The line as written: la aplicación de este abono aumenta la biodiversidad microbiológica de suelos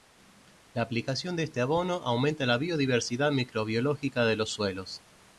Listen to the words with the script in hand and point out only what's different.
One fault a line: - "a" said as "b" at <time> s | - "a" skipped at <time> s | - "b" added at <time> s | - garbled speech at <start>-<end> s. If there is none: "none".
- "los" added at 4.3 s